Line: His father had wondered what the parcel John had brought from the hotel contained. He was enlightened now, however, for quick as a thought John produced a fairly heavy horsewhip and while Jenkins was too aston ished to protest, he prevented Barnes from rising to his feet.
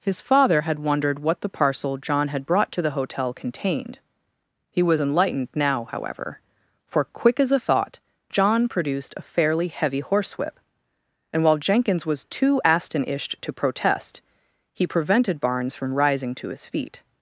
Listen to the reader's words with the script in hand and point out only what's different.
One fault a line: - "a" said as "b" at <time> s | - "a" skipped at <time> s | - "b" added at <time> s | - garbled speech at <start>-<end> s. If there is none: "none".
- "from" said as "to" at 2.7 s